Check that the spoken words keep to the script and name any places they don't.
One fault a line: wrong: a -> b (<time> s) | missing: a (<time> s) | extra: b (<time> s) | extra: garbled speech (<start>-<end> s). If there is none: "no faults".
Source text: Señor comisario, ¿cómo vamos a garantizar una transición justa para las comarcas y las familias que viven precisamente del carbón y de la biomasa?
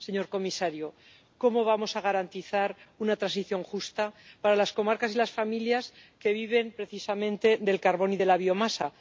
no faults